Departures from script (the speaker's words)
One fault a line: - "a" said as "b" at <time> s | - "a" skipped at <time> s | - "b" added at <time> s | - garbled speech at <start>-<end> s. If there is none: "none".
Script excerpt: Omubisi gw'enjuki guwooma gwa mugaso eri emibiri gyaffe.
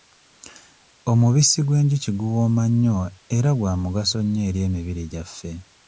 - "nnyo era" added at 2.7 s
- "nnyo" added at 4.2 s